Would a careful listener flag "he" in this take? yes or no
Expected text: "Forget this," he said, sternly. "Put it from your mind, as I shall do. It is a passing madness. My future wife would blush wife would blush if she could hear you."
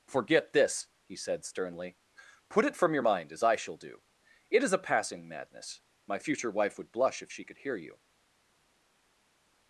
no